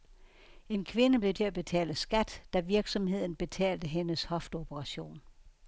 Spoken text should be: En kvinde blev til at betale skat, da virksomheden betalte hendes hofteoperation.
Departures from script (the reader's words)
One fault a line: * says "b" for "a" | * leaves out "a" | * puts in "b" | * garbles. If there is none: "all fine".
all fine